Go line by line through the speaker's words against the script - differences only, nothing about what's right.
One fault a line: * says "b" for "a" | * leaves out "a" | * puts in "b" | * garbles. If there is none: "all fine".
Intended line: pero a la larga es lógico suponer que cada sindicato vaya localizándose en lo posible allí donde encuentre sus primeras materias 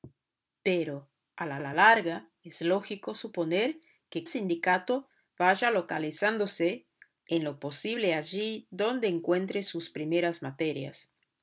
* puts in "la"
* leaves out "cada"